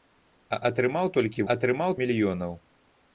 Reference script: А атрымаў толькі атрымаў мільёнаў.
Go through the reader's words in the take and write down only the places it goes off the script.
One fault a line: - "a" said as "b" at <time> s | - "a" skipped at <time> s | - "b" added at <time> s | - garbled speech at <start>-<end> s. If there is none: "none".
none